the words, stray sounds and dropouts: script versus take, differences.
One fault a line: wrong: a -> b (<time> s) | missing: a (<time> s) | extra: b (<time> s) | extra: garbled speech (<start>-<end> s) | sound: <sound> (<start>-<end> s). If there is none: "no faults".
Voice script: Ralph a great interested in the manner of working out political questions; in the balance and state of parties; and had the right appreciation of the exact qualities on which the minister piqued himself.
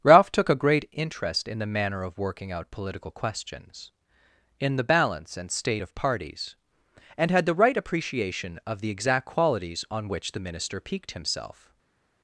extra: took (0.3 s)
wrong: interested -> interest (0.9 s)